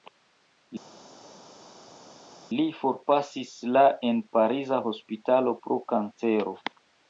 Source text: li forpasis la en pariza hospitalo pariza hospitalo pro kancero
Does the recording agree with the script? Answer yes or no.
no